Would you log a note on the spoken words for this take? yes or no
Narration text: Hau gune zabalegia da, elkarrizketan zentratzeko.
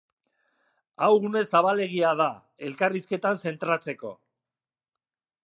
no